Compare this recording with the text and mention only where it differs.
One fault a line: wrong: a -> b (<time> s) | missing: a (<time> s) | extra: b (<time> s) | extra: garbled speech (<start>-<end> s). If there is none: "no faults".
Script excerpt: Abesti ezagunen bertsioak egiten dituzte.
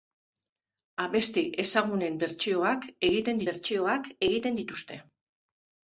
extra: bertsioak egiten (3.5 s)